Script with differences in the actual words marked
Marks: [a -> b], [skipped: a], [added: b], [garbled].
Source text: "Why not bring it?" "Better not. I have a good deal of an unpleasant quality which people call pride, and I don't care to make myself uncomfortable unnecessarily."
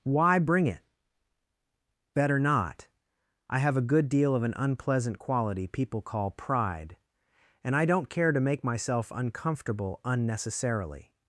"Why [skipped: not] bring it?" "Better not. I have a good deal of an unpleasant quality [skipped: which] people call pride, and I don't care to make myself uncomfortable unnecessarily."